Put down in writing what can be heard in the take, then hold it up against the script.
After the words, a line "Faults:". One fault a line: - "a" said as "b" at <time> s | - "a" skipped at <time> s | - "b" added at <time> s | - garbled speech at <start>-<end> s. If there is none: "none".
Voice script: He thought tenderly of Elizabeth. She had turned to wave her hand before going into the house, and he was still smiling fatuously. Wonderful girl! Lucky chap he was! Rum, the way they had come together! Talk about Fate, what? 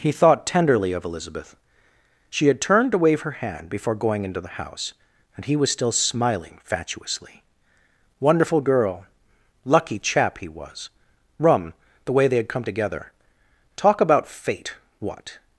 He thought tenderly of Elizabeth. She had turned to wave her hand before going into the house, and he was still smiling fatuously. Wonderful girl! Lucky chap he was! Rum, the way they had come together! Talk about Fate, what?
Faults:
none